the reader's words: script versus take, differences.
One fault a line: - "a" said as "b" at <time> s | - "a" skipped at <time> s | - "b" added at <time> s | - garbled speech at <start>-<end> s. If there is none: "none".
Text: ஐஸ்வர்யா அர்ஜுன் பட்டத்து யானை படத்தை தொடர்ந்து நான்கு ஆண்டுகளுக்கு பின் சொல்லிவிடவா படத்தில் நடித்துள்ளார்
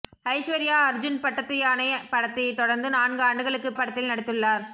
- "பின் சொல்லிவிடவா" skipped at 3.7 s